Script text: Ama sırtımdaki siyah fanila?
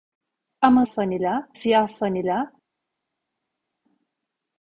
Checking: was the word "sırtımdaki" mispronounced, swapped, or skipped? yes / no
yes